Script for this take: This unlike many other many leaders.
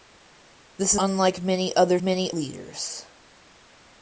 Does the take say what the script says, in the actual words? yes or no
yes